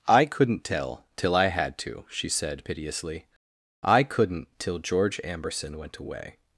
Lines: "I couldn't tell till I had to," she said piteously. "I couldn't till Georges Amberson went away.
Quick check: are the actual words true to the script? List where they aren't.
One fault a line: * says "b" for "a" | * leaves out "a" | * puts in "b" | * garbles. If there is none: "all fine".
* says "George" for "Georges"